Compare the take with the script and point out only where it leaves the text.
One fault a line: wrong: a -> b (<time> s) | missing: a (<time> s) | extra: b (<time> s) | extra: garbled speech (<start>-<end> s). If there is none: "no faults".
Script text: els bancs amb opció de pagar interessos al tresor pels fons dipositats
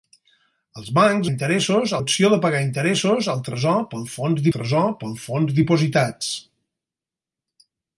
wrong: amb -> interessos (1.3 s)
extra: tresor pels fons (4.6 s)